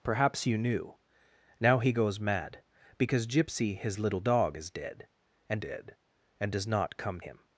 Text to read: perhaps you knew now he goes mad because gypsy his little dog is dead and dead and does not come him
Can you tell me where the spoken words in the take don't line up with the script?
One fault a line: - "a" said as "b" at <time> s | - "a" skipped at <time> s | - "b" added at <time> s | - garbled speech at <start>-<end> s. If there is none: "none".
none